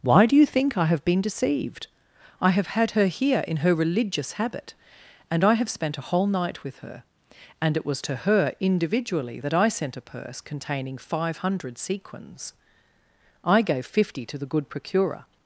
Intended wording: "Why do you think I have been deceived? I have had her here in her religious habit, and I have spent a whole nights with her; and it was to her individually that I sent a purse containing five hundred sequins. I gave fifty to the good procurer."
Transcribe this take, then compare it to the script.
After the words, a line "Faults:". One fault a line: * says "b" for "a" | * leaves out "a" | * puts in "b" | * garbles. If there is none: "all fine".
"Why do you think I have been deceived? I have had her here in her religious habit, and I have spent a whole night with her; and it was to her individually that I sent a purse containing five hundred sequins. I gave fifty to the good procurer."
Faults:
* says "night" for "nights"